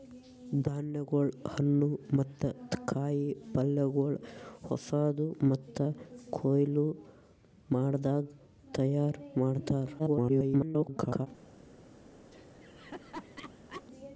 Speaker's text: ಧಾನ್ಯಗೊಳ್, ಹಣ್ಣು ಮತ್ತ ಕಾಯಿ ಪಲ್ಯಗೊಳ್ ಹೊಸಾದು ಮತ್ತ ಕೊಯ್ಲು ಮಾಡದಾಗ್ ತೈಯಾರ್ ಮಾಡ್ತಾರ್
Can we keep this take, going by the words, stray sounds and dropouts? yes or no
no